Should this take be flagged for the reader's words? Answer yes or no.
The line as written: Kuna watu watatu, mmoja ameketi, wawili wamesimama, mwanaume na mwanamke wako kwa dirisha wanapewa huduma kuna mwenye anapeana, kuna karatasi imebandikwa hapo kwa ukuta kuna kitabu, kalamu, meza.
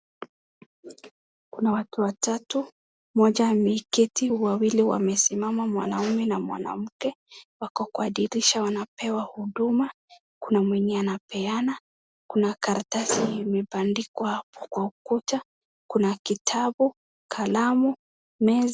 no